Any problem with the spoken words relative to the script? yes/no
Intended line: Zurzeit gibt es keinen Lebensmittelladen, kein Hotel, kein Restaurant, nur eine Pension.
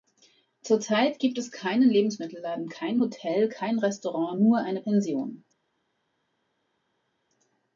no